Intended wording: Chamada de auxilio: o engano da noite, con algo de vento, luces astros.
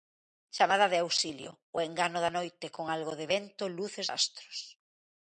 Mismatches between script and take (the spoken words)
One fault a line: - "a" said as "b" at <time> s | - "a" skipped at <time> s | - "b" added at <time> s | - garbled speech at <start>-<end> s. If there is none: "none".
none